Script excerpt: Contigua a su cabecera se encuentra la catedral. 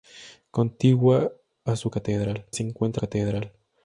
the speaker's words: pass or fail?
fail